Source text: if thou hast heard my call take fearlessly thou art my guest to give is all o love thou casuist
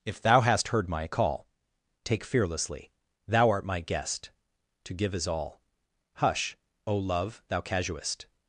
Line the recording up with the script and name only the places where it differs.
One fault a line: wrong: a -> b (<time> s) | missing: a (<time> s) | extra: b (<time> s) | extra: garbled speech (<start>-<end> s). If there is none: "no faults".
extra: hush (6.2 s)